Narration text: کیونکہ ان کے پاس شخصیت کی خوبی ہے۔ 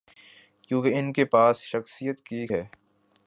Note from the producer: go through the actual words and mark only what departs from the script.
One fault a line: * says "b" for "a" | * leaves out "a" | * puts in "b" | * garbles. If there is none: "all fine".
* leaves out "خوبی"